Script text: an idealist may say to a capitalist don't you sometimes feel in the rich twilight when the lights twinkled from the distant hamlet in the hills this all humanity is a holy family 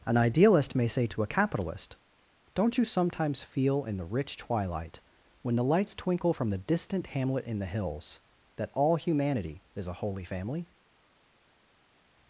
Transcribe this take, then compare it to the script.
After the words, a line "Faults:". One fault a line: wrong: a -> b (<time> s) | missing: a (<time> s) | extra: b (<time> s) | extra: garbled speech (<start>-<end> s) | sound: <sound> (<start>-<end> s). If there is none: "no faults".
an idealist may say to a capitalist don't you sometimes feel in the rich twilight when the lights twinkle from the distant hamlet in the hills that all humanity is a holy family
Faults:
wrong: twinkled -> twinkle (5.9 s)
wrong: this -> that (8.6 s)